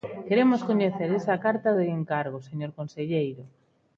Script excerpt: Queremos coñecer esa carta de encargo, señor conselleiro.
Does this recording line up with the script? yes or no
yes